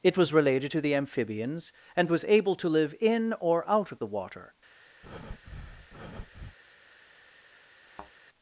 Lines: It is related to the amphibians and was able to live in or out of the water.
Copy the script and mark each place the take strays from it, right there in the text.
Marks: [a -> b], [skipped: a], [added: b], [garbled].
It [is -> was] related to the amphibians and was able to live in or out of the water.